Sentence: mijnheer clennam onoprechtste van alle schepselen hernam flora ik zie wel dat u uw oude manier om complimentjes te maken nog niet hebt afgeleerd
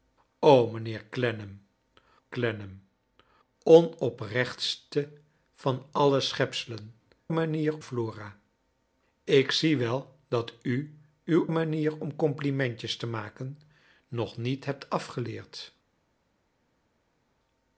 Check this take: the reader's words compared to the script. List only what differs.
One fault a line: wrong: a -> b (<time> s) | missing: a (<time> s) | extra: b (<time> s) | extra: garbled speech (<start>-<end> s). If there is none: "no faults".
extra: clennam (2.3 s)
wrong: hernam -> manier (7.3 s)
missing: oude (11.5 s)